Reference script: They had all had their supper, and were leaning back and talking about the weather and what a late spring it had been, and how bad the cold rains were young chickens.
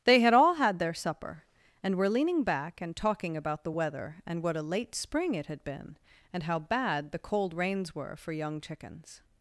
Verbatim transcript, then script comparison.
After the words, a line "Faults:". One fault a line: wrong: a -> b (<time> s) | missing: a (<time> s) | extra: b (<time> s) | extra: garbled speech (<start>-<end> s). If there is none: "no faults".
They had all had their supper, and were leaning back and talking about the weather and what a late spring it had been, and how bad the cold rains were for young chickens.
Faults:
extra: for (8.2 s)